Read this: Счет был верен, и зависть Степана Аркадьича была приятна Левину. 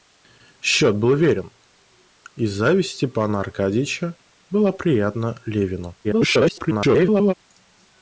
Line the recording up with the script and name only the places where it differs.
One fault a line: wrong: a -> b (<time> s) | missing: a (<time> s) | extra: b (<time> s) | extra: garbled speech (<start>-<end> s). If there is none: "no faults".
extra: garbled speech (6.0-7.3 s)